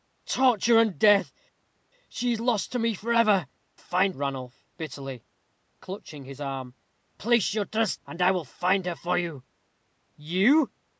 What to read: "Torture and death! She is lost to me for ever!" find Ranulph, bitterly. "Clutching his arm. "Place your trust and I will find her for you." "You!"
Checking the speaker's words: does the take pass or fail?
pass